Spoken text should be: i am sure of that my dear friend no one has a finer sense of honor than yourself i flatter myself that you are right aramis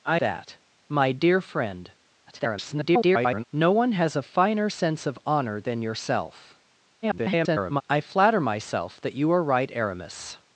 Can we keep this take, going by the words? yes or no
no